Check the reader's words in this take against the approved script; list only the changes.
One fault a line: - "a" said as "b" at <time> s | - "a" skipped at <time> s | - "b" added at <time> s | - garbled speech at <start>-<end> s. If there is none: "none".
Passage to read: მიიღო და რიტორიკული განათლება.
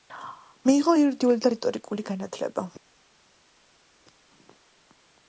- "იურიდიული" added at 1.0 s